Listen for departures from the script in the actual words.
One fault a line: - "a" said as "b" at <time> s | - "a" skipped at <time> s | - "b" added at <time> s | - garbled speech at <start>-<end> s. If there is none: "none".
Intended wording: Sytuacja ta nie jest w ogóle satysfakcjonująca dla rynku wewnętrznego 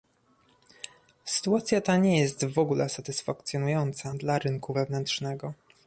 none